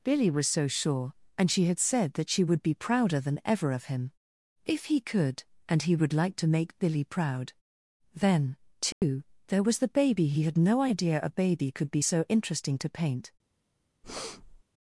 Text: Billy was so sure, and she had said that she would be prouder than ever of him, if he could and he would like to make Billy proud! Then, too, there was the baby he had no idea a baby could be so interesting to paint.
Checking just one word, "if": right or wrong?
right